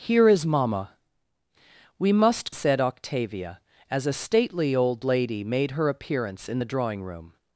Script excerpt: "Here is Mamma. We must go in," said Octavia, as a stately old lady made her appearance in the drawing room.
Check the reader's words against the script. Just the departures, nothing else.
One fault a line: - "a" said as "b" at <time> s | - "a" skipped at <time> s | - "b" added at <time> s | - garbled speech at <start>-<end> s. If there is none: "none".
- "go in" skipped at 2.5 s